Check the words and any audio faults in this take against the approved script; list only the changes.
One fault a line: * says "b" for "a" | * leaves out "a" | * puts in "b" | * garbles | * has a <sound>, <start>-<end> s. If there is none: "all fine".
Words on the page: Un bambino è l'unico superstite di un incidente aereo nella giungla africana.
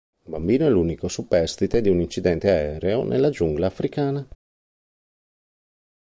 all fine